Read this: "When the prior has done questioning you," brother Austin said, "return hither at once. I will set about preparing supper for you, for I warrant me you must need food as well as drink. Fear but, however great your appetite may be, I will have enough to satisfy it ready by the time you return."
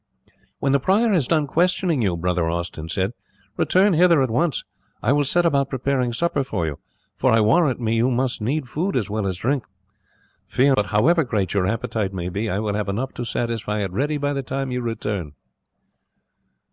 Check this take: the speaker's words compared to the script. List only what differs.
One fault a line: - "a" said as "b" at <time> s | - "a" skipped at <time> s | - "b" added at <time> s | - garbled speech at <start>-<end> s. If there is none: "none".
none